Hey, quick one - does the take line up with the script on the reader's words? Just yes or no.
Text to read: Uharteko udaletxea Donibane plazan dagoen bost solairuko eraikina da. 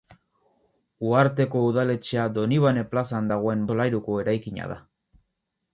no